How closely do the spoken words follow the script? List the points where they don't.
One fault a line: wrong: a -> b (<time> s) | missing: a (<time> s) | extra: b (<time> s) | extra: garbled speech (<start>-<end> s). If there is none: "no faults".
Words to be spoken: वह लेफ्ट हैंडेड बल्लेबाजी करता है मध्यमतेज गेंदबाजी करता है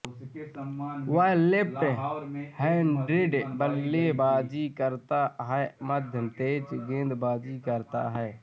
no faults